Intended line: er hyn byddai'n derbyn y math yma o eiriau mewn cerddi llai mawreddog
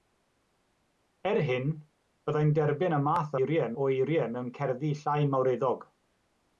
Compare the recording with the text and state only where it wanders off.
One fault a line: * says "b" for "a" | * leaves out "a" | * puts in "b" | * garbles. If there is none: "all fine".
* says "eiriau" for "yma"